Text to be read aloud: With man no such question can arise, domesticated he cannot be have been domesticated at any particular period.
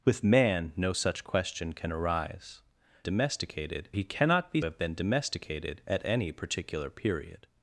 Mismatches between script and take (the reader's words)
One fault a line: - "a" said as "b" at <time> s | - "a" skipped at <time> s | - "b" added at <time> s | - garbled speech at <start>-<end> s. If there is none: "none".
none